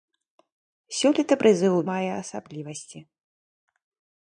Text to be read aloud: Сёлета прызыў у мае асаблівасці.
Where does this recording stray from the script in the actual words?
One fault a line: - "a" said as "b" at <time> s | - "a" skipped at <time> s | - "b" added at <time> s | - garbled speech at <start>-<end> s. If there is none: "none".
none